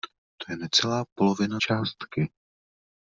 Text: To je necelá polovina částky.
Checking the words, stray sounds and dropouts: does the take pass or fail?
pass